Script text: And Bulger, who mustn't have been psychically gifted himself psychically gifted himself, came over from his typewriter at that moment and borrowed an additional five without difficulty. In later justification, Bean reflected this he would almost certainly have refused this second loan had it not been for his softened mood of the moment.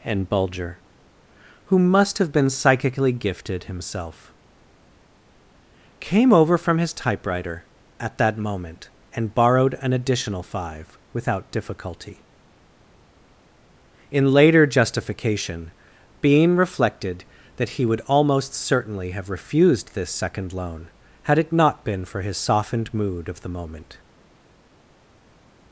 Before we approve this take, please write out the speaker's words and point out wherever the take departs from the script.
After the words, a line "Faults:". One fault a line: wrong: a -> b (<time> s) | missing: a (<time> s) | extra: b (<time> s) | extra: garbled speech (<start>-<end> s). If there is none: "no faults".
And Bulger, who must have been psychically gifted himself, came over from his typewriter at that moment and borrowed an additional five without difficulty. In later justification, Bean reflected that he would almost certainly have refused this second loan had it not been for his softened mood of the moment.
Faults:
wrong: mustn't -> must (1.8 s)
missing: psychically gifted himself (4.3 s)
wrong: this -> that (17.6 s)